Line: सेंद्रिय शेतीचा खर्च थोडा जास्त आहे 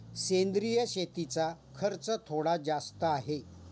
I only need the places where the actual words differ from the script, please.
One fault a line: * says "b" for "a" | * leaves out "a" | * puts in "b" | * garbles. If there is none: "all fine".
all fine